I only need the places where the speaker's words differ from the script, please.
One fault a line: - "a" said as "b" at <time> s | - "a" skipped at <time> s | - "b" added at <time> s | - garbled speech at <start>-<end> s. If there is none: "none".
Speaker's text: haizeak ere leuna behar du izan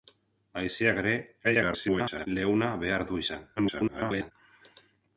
- garbled speech at 1.4-2.3 s
- garbled speech at 3.6-4.3 s